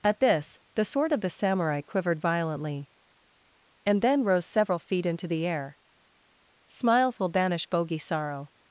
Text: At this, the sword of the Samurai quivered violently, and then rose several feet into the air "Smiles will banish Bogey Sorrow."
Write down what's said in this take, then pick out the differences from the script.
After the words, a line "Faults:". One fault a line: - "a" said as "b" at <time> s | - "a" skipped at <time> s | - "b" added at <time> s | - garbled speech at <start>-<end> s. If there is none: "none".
At this, the sword of the Samurai quivered violently, and then rose several feet into the air "Smiles will banish Bogey Sorrow."
Faults:
none